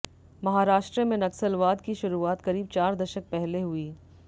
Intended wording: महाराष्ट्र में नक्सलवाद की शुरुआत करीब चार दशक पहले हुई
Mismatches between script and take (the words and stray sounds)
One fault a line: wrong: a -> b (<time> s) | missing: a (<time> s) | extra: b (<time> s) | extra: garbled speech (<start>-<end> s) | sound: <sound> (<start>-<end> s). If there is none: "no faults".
no faults